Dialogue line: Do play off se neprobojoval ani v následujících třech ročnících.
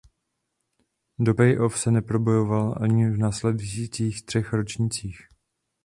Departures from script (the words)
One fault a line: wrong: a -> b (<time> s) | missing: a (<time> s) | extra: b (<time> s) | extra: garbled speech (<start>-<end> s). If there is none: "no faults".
no faults